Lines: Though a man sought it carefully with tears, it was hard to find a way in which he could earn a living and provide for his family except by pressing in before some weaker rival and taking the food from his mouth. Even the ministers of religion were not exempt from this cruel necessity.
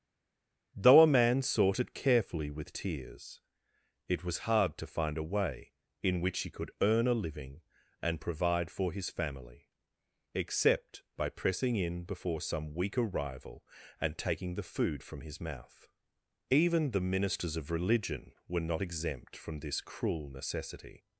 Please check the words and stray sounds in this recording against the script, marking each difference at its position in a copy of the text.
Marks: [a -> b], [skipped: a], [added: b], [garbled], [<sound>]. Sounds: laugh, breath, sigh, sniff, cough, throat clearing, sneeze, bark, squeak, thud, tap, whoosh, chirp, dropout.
Though a man sought it carefully with tears, it was hard to find a way in which he could earn a living and provide for his family except by pressing in before some weaker rival and taking the food from his mouth. Even the ministers of religion were not exempt from this cruel necessity.